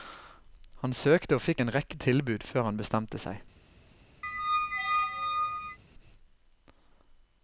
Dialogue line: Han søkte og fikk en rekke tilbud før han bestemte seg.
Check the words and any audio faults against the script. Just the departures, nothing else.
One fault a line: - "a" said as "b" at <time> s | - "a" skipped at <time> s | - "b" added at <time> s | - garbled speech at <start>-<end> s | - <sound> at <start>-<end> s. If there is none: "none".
- squeak at 4.2-5.8 s